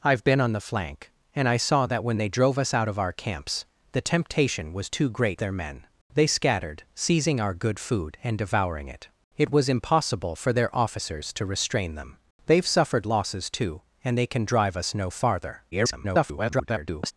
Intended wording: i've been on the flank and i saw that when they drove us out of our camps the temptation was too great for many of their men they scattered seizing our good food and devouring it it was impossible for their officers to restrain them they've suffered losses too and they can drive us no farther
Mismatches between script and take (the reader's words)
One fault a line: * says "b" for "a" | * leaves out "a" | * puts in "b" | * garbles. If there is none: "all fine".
* leaves out "for many of"
* garbles